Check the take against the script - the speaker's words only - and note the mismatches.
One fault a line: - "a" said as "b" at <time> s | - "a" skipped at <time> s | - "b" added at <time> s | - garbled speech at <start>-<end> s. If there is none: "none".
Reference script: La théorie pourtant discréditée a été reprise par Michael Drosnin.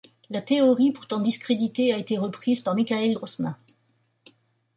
none